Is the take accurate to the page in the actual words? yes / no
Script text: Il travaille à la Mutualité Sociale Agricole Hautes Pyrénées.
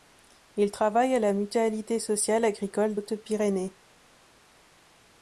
yes